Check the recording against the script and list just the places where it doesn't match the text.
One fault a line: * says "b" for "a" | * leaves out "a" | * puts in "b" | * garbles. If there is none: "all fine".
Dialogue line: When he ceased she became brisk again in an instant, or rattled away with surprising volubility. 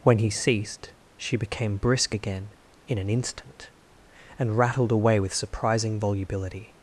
* says "and" for "or"